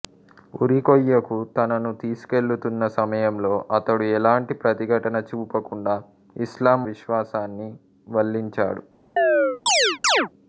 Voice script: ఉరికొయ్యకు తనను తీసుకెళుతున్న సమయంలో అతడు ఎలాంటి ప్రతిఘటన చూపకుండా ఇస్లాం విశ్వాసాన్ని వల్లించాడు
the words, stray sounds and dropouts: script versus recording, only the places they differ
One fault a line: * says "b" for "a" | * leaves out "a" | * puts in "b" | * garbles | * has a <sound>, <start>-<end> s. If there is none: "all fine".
* has a chirp, 9.2-10.3 s